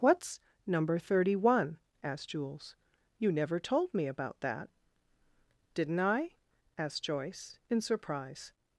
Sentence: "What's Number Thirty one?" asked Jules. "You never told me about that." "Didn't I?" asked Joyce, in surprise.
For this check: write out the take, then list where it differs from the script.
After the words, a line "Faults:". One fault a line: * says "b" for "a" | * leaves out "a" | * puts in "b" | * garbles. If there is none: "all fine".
"What's Number Thirty one?" asked Jules. "You never told me about that." "Didn't I?" asked Joyce, in surprise.
Faults:
all fine